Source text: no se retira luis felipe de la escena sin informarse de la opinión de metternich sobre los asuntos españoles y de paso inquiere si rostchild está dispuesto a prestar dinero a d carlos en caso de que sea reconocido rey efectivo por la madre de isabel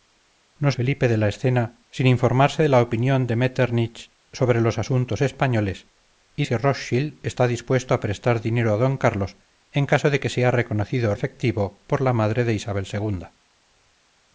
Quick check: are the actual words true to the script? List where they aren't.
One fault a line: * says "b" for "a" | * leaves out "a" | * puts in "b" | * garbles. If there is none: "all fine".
* leaves out "se retira luis"
* leaves out "de paso inquiere"
* leaves out "rey"